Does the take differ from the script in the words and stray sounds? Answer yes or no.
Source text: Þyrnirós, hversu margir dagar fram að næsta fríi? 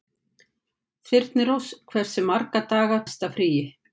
yes